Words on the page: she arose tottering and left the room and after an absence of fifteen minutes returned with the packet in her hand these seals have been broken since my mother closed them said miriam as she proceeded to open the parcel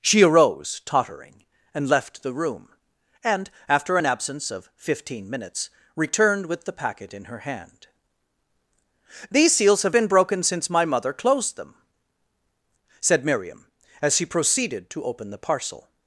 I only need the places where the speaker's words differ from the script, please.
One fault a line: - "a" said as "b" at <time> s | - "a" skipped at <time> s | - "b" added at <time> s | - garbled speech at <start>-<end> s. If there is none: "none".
none